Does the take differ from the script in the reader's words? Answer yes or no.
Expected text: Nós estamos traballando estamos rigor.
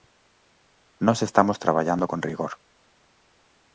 yes